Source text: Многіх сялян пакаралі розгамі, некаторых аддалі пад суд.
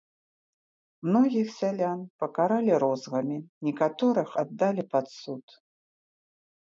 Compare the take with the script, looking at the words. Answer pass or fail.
pass